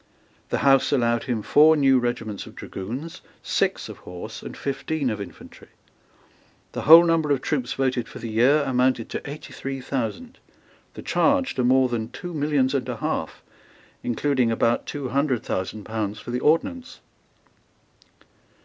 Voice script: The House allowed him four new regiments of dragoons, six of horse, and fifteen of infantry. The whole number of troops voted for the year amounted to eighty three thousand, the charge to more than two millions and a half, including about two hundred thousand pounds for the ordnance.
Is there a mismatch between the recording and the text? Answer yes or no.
no